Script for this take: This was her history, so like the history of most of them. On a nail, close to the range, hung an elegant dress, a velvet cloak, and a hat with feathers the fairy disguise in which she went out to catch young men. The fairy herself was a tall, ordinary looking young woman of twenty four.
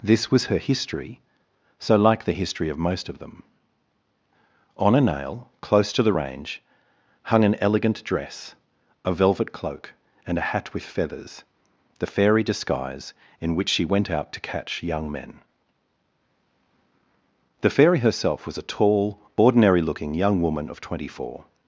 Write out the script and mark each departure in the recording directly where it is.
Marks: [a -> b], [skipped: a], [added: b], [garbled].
This was her history, so like the history of most of them. On a nail, close to the range, hung an elegant dress, a velvet cloak, and a hat with feathers the fairy disguise in which she went out to catch young men. The fairy herself was a tall, ordinary looking young woman of twenty four.